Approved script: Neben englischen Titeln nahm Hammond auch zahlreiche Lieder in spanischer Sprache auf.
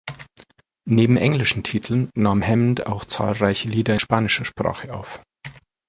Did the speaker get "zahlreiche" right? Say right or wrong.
right